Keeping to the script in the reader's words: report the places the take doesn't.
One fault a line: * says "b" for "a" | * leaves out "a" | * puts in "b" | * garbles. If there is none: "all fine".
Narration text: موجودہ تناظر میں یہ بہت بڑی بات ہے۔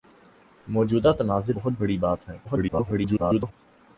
* leaves out "میں یہ"
* garbles